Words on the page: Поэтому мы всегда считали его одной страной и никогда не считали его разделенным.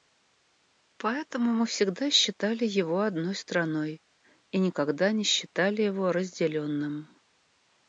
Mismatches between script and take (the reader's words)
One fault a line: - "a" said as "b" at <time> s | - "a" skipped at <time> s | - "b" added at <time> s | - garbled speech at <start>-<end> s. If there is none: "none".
none